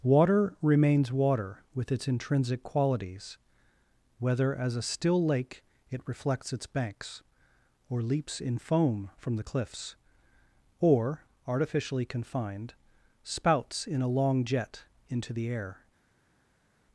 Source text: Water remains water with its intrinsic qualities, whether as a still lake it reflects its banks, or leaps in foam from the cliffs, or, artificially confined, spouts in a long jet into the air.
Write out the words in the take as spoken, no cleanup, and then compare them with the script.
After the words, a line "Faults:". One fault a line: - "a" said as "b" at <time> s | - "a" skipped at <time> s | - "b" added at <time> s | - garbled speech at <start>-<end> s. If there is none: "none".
Water remains water with its intrinsic qualities, whether as a still lake it reflects its banks, or leaps in foam from the cliffs, or, artificially confined, spouts in a long jet into the air.
Faults:
none